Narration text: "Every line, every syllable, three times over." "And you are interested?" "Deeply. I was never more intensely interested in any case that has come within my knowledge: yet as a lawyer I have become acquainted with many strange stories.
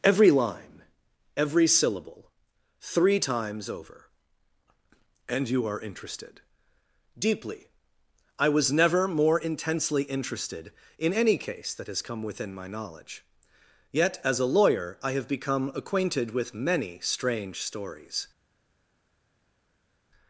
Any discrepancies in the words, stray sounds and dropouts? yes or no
no